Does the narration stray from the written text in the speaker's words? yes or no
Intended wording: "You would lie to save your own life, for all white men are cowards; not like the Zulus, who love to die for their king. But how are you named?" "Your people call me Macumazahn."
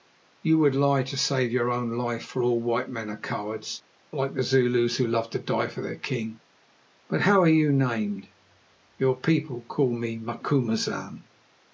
yes